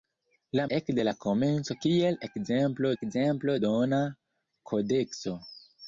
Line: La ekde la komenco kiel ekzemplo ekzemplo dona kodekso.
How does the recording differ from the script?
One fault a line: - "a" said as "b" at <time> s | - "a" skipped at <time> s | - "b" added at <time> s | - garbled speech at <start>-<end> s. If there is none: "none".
none